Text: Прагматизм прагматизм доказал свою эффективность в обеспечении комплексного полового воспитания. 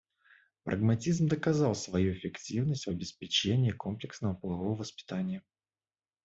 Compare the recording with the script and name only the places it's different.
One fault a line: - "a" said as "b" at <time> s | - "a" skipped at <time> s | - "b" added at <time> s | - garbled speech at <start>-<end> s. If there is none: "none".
- "прагматизм" skipped at 1.3 s